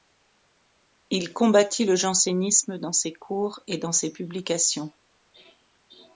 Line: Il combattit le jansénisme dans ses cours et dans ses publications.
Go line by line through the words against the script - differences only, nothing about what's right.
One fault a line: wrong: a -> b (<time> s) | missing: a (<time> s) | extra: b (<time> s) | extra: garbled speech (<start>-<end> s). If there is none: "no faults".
no faults